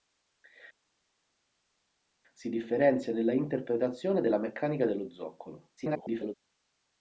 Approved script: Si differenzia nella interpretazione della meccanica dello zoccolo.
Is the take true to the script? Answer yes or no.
no